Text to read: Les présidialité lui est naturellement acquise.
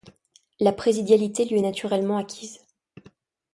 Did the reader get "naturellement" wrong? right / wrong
right